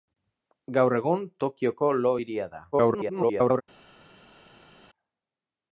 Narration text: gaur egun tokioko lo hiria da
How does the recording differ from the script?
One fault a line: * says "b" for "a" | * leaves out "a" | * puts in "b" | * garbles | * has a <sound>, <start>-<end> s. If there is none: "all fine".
* garbles